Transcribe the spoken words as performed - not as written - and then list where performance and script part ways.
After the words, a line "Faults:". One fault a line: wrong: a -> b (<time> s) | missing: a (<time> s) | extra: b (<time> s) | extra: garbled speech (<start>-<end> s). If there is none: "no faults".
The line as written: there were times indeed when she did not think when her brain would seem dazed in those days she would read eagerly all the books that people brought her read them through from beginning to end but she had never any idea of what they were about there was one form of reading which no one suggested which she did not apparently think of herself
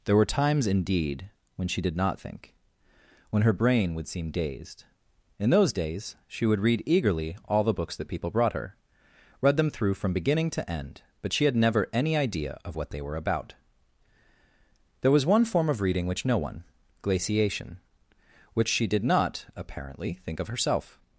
there were times indeed when she did not think when her brain would seem dazed in those days she would read eagerly all the books that people brought her read them through from beginning to end but she had never any idea of what they were about there was one form of reading which no one glaciation which she did not apparently think of herself
Faults:
wrong: suggested -> glaciation (17.0 s)